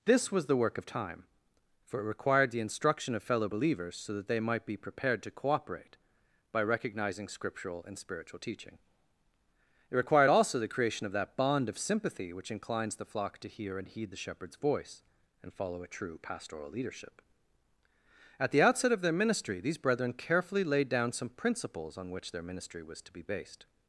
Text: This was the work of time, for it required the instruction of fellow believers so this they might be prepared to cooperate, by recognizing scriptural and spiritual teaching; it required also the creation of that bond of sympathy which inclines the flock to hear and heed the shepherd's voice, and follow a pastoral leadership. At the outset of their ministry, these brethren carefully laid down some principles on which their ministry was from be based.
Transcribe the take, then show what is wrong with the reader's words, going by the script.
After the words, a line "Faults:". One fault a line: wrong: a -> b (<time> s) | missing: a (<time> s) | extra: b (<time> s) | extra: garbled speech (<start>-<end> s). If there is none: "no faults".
This was the work of time, for it required the instruction of fellow believers so that they might be prepared to cooperate, by recognizing scriptural and spiritual teaching; it required also the creation of that bond of sympathy which inclines the flock to hear and heed the shepherd's voice, and follow a true pastoral leadership. At the outset of their ministry, these brethren carefully laid down some principles on which their ministry was to be based.
Faults:
wrong: this -> that (4.1 s)
extra: true (15.9 s)
wrong: from -> to (23.0 s)